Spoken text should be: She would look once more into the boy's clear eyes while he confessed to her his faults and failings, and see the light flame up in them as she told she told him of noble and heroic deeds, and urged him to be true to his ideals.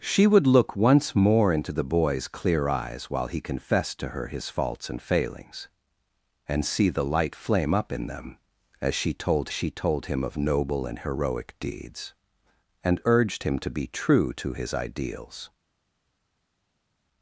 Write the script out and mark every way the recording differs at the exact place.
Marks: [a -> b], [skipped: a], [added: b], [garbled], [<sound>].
She would look once more into the boy's clear eyes while he confessed to her his faults and failings, and see the light flame up in them as she told she told him of noble and heroic deeds, and urged him to be true to his ideals.